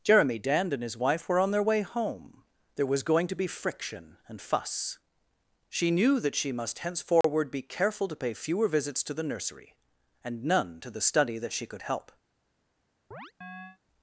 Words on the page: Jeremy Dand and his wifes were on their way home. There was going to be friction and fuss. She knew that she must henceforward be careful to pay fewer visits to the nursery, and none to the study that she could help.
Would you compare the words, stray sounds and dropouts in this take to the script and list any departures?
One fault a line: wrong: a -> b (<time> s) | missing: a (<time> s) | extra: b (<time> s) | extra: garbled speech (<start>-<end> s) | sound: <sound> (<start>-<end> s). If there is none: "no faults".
wrong: wifes -> wife (1.0 s)
sound: dropout (7.2-7.2 s)
sound: chirp (13.1-13.8 s)